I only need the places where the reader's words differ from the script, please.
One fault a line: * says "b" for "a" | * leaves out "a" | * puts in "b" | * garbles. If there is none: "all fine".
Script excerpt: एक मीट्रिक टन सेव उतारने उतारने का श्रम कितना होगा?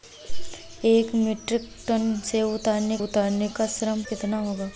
all fine